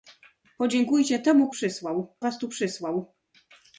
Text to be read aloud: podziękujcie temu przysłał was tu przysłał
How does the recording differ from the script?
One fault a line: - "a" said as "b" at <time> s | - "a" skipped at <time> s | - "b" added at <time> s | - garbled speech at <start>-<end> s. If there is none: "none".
none